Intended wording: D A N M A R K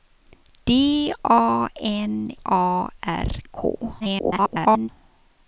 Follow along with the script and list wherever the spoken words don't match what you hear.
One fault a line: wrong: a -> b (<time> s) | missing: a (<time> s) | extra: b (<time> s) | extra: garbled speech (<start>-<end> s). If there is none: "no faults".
missing: M (2.3 s)
extra: garbled speech (4.0-4.9 s)